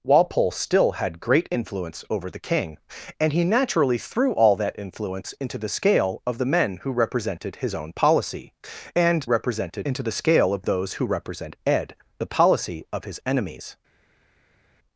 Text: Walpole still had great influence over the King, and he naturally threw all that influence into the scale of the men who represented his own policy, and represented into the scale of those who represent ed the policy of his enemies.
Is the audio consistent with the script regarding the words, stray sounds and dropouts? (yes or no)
yes